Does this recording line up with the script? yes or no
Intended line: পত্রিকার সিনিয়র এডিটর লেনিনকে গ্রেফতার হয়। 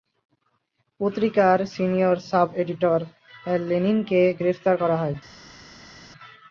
no